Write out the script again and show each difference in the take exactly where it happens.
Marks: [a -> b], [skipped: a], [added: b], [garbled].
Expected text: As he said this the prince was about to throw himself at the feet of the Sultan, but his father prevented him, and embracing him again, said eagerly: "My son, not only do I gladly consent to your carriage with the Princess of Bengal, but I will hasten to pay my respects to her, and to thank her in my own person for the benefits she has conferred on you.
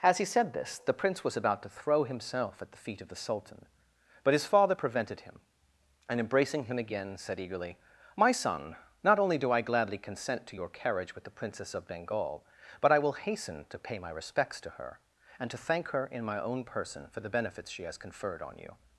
As he said this the prince was about to throw himself at the feet of the Sultan, but his father prevented him, and embracing him again, said eagerly: "My son, not only do I gladly consent to your carriage with the Princess of Bengal, but I will hasten to pay my respects to her, and to thank her in my own person for the benefits she has conferred on you.